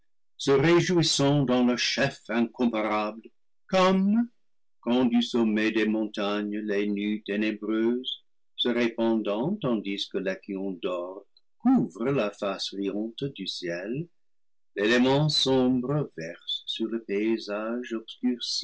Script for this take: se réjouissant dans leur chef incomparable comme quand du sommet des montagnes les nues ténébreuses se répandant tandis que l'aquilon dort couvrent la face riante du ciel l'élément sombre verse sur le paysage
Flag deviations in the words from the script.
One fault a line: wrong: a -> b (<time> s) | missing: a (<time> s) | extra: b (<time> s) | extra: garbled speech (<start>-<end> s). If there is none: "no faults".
no faults